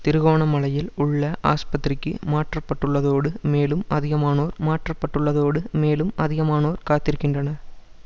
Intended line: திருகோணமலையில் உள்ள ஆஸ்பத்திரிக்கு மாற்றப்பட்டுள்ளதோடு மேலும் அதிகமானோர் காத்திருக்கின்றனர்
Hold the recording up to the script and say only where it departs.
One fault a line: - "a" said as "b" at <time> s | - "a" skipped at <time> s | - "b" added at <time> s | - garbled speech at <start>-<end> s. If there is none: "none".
- "மாற்றப்பட்டுள்ளதோடு மேலும் அதிகமானோர்" added at 4.7 s